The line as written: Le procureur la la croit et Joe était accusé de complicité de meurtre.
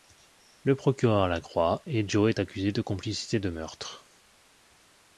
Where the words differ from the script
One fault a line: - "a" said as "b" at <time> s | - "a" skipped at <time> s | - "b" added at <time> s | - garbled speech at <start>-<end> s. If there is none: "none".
- "la" skipped at 1.4 s
- "était" said as "est" at 2.3 s